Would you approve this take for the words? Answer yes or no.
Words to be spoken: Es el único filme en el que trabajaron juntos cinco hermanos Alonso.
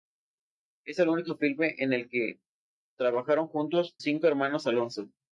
yes